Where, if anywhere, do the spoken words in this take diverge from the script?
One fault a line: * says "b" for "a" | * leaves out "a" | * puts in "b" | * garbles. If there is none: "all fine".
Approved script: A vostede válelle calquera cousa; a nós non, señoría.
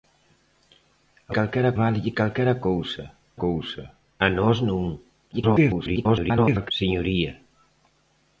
* says "calquera" for "vostede"
* puts in "cousa"
* garbles